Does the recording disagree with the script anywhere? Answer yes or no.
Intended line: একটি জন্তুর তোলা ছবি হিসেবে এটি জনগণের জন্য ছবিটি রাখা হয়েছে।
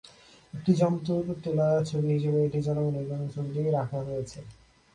no